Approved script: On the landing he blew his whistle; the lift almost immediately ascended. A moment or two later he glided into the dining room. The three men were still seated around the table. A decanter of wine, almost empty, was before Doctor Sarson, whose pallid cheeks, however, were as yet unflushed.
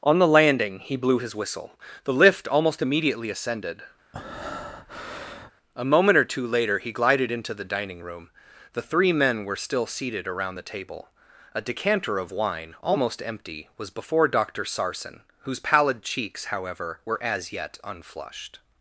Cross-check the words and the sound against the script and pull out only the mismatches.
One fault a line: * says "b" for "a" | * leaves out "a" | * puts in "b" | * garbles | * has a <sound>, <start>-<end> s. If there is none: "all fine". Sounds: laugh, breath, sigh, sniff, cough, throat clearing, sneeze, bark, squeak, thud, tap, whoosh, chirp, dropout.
* has a breath, 4.1-5.5 s